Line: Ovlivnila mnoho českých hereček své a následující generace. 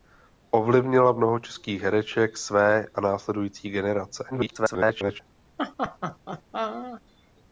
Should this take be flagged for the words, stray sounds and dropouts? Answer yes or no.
yes